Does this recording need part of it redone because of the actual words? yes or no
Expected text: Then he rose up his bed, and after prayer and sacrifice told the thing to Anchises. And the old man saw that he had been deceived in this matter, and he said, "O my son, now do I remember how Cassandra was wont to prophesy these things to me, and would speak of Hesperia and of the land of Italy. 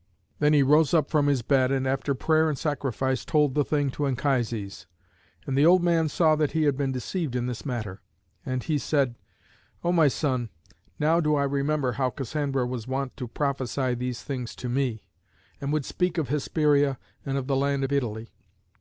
yes